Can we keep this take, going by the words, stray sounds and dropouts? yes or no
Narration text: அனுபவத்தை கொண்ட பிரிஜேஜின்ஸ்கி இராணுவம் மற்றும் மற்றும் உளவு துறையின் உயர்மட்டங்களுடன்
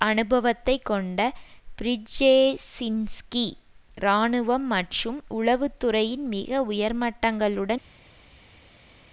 no